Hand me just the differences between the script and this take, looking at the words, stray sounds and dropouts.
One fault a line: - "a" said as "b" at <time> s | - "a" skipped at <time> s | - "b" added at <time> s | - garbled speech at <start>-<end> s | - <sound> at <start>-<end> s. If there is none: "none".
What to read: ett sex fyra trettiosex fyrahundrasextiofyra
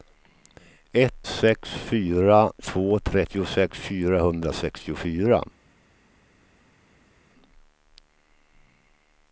- "två" added at 2.6 s